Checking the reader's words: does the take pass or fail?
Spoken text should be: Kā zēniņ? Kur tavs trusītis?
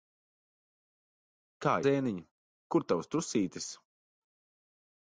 pass